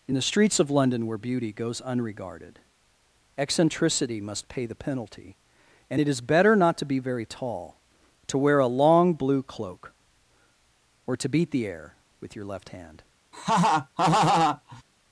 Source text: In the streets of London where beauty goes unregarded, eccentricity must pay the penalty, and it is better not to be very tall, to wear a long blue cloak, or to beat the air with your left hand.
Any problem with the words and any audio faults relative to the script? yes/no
yes